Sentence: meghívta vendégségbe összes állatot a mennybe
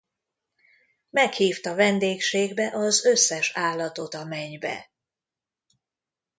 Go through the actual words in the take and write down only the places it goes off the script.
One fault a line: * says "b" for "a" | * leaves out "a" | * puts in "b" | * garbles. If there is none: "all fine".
* puts in "az"